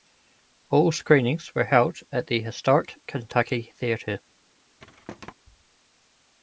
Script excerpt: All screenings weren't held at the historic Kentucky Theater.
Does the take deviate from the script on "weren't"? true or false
true